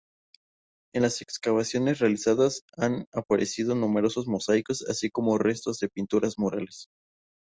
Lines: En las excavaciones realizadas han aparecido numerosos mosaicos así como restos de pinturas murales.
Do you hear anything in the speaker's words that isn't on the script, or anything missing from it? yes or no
no